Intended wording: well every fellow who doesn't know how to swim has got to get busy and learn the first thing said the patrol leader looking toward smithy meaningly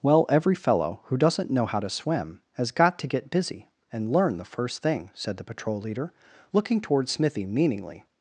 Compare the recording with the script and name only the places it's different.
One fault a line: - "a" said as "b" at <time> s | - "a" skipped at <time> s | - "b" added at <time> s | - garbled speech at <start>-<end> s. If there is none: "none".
none